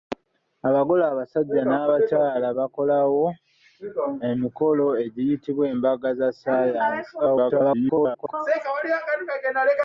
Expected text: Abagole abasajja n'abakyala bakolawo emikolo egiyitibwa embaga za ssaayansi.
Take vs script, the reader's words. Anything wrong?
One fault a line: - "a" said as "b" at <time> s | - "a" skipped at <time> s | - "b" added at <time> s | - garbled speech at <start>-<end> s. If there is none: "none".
- garbled speech at 7.2-8.3 s